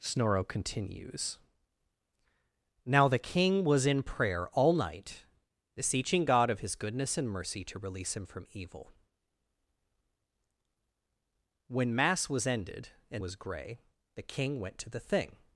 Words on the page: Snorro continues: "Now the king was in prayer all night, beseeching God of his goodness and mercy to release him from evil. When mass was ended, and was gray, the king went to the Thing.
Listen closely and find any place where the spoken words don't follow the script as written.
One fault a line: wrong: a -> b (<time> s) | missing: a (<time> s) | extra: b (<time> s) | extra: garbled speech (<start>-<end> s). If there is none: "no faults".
no faults